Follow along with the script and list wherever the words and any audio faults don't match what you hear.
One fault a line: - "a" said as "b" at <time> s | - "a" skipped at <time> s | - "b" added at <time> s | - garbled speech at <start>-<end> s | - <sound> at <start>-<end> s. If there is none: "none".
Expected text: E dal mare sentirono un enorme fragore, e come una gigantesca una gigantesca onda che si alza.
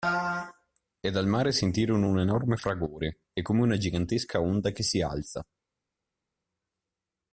- "una gigantesca" skipped at 4.4 s